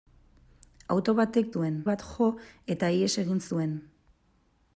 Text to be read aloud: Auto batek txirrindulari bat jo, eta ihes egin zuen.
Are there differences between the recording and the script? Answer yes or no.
yes